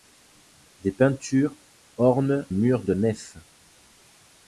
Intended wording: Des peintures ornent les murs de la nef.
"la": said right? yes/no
no